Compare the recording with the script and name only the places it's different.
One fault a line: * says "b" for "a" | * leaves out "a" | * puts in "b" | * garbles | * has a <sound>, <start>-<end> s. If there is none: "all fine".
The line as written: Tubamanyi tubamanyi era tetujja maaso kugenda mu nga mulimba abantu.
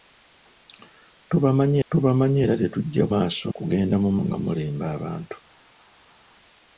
all fine